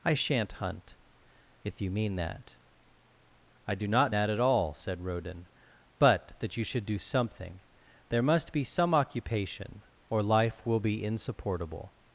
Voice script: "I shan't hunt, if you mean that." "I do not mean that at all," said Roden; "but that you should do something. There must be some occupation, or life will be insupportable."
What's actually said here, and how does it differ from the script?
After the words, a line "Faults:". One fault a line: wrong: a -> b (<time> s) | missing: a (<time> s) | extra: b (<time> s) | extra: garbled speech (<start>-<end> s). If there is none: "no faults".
"I shan't hunt, if you mean that." "I do not that at all," said Roden; "but that you should do something. There must be some occupation, or life will be insupportable."
Faults:
missing: mean (4.2 s)